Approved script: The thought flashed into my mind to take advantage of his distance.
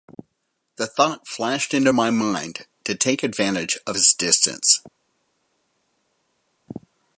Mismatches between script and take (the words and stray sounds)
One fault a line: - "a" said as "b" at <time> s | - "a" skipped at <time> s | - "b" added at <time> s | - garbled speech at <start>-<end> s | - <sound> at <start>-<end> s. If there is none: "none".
none